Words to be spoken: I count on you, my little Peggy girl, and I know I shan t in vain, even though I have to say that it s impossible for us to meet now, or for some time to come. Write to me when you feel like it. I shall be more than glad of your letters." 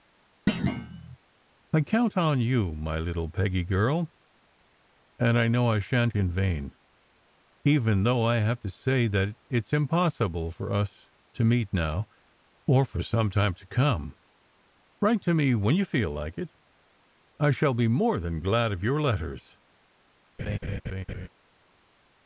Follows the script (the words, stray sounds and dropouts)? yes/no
no